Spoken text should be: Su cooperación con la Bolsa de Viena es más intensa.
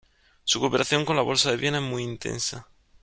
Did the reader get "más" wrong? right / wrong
wrong